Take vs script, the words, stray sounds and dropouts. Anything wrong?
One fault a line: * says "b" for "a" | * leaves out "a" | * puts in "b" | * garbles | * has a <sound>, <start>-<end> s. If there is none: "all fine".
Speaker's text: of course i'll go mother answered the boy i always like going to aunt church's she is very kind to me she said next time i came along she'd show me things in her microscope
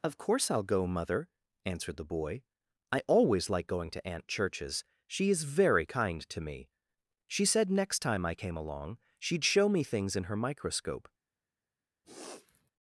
* has a sniff, 12.0-12.7 s